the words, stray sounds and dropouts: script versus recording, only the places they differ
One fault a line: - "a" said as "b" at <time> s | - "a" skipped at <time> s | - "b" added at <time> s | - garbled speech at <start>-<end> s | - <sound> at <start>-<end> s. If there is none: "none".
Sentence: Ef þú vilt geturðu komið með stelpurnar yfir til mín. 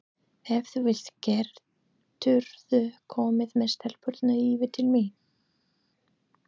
none